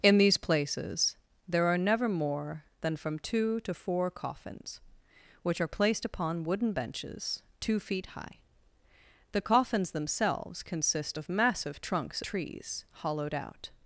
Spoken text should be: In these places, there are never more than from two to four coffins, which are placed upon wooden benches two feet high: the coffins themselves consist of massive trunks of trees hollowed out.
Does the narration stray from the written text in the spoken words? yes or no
yes